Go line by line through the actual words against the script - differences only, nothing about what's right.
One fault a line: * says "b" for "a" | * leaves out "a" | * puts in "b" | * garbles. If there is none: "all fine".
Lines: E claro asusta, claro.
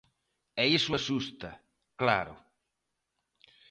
* says "iso" for "claro"